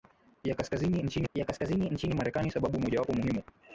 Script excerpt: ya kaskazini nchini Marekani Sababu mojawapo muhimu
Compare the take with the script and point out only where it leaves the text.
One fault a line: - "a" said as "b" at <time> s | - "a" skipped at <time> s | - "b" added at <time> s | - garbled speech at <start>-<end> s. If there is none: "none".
- "ya kaskazini nchini" added at 1.3 s